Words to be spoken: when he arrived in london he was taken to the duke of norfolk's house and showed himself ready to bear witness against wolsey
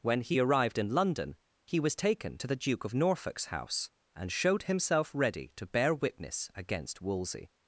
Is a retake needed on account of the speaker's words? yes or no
no